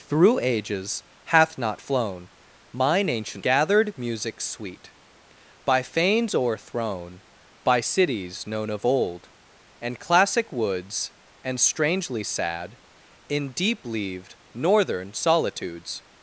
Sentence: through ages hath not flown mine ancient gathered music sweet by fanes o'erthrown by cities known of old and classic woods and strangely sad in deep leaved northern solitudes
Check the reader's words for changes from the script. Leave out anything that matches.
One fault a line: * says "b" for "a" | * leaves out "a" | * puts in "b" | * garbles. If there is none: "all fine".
all fine